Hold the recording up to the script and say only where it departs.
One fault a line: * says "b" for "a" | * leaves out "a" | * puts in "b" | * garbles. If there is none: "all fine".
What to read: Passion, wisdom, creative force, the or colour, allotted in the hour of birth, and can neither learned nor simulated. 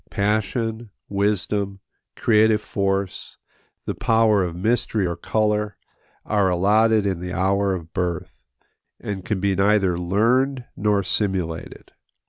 * puts in "power of mystery"
* puts in "are"
* puts in "be"